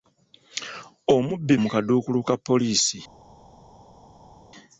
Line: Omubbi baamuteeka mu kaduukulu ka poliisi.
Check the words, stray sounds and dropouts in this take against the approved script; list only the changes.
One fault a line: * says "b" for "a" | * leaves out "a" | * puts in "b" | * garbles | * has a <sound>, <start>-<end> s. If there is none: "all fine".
* leaves out "baamuteeka"